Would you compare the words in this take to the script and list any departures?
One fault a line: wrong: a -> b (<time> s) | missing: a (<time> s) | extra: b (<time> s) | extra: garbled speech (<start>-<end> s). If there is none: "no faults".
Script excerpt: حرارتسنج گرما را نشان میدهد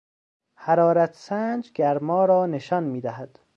no faults